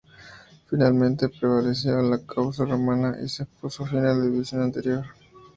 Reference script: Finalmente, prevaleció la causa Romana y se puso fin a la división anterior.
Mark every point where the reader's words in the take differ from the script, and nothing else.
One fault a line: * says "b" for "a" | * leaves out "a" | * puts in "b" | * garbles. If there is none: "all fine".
all fine